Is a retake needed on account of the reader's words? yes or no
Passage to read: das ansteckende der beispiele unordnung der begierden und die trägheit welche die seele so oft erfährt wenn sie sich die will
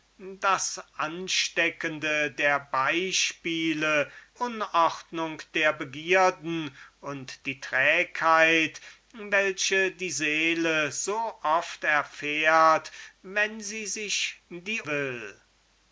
no